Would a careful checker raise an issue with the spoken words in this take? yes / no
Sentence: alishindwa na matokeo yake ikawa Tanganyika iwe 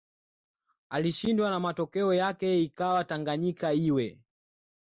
no